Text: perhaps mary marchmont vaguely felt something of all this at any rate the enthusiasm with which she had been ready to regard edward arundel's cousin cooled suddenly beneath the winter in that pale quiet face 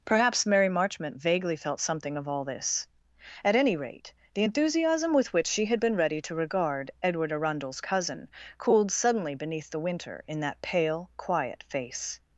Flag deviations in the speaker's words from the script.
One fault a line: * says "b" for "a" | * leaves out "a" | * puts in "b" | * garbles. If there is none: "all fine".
all fine